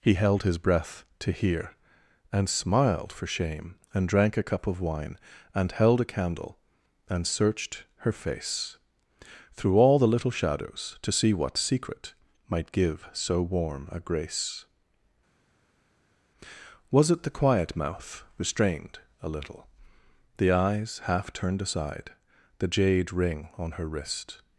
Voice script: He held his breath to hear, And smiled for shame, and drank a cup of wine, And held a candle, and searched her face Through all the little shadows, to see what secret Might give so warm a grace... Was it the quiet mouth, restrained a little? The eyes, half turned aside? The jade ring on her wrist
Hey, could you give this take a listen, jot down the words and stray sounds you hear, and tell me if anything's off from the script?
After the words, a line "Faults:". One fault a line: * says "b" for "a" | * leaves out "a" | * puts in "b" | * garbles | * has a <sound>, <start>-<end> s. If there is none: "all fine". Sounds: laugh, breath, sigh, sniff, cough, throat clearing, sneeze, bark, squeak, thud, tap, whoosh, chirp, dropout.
He held his breath to hear, And smiled for shame, and drank a cup of wine, And held a candle, and searched her face Through all the little shadows, to see what secret Might give so warm a grace... Was it the quiet mouth, restrained a little? The eyes, half turned aside? The jade ring on her wrist
Faults:
all fine